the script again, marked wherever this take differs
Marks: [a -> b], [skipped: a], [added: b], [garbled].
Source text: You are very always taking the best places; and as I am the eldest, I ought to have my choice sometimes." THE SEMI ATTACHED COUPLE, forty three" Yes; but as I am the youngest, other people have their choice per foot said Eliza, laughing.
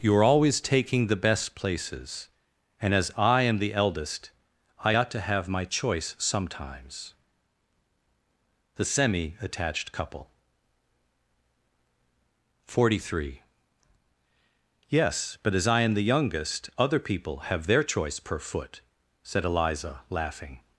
You are [skipped: very] always taking the best places; and as I am the eldest, I ought to have my choice sometimes." THE SEMI ATTACHED COUPLE, forty three" Yes; but as I am the youngest, other people have their choice per foot said Eliza, laughing.